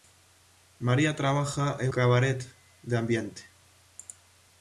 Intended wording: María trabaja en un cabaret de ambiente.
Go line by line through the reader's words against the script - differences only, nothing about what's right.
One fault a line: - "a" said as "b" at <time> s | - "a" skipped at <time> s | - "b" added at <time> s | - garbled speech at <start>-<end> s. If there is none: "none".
- "un" skipped at 1.9 s